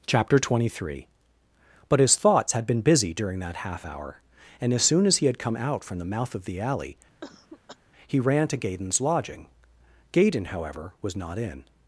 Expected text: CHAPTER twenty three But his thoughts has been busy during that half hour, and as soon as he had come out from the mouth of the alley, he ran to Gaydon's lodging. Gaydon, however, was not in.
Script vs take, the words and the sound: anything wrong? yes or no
yes